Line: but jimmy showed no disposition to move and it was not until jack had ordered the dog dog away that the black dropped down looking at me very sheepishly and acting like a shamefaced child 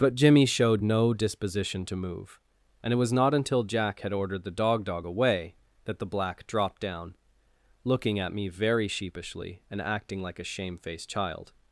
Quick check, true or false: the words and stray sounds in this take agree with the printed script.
true